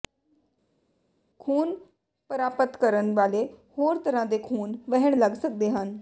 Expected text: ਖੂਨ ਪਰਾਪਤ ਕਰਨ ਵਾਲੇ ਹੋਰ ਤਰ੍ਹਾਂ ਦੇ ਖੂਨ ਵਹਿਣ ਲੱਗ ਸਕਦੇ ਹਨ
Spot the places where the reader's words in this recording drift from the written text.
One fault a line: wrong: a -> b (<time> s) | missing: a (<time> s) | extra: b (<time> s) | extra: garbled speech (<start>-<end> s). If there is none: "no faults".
no faults